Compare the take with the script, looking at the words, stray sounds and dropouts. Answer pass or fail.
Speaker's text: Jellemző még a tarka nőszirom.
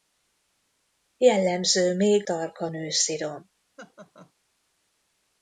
fail